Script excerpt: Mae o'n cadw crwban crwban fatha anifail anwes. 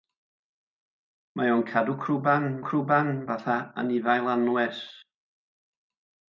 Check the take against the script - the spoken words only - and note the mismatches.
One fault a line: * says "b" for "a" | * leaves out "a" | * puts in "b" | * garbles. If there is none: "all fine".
all fine